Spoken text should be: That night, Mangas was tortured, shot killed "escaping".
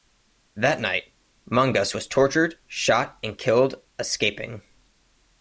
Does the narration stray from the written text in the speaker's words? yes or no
yes